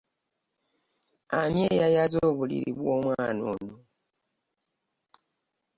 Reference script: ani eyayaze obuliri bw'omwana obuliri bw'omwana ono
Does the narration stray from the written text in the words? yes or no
yes